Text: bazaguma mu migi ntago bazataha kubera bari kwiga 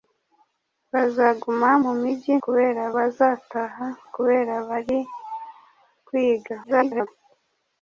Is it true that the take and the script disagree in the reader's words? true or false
true